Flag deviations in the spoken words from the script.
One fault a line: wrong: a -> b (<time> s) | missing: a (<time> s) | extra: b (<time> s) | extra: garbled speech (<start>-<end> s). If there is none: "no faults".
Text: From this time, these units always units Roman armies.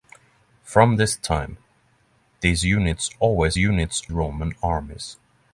no faults